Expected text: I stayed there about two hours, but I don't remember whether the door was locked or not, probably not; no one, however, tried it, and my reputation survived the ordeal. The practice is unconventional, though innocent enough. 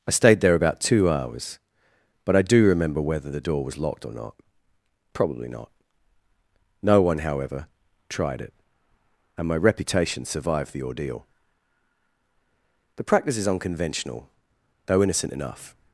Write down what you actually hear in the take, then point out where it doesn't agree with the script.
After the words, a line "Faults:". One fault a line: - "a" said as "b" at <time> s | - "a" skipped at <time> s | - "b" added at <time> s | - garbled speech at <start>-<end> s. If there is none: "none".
I stayed there about two hours, but I do remember whether the door was locked or not, probably not; no one, however, tried it, and my reputation survived the ordeal. The practice is unconventional, though innocent enough.
Faults:
- "don't" said as "do" at 2.4 s